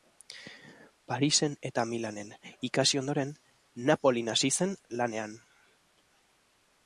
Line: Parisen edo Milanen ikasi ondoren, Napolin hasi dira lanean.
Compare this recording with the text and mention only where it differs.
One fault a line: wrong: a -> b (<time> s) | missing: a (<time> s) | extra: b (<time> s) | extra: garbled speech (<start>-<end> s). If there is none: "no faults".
wrong: edo -> eta (1.7 s)
wrong: dira -> zen (4.6 s)